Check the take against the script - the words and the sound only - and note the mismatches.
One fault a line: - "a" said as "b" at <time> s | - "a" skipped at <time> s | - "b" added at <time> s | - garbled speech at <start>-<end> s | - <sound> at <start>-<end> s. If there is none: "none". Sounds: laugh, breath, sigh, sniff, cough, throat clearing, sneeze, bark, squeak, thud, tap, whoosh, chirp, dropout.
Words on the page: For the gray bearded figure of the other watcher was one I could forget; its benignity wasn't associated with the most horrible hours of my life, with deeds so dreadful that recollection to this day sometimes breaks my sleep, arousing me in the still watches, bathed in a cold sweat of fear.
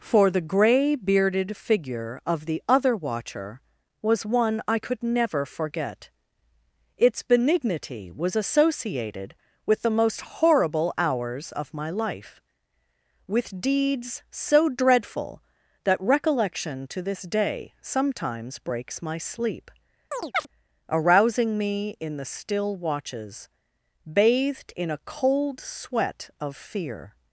- "never" added at 5.0 s
- "wasn't" said as "was" at 8.1 s
- chirp at 20.1-20.5 s